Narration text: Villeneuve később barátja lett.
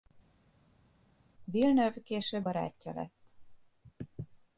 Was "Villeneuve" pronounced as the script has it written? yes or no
yes